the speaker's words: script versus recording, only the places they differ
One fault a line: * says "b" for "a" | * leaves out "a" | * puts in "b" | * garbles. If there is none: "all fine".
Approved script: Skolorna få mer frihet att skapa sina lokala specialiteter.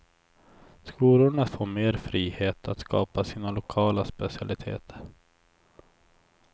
all fine